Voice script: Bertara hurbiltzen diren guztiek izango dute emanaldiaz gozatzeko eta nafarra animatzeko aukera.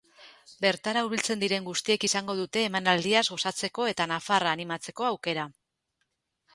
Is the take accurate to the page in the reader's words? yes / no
yes